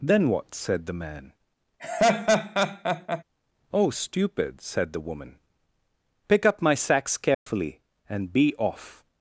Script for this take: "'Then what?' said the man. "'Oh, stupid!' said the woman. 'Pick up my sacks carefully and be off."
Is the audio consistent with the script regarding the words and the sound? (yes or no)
no